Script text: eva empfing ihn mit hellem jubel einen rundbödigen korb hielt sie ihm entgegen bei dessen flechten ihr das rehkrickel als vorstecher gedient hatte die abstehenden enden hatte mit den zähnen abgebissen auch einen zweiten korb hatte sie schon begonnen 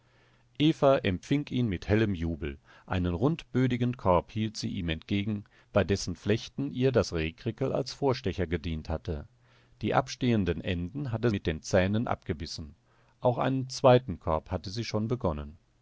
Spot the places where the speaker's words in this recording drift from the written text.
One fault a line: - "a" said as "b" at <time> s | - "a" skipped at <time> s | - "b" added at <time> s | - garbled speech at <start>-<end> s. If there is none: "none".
none